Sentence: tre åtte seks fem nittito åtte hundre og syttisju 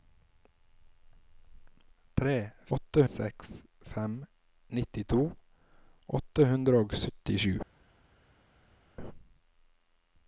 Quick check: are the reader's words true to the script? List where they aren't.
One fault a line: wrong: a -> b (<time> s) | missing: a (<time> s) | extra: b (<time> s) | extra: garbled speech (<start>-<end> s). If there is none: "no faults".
no faults